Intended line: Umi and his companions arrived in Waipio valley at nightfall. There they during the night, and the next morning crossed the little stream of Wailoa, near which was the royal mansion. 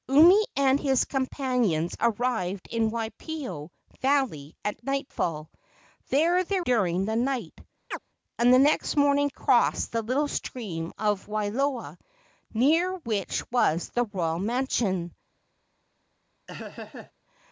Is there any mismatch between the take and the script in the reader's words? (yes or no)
no